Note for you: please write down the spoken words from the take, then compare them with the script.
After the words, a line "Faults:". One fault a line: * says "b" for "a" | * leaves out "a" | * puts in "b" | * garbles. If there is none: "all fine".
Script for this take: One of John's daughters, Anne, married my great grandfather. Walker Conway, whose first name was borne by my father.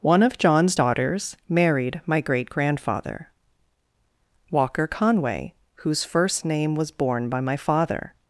One of John's daughters, Married my great grandfather. Walker Conway, whose first name was borne by my father.
Faults:
* leaves out "Anne"